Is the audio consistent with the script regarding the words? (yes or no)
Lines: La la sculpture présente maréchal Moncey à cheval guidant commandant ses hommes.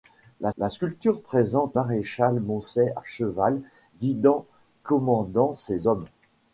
yes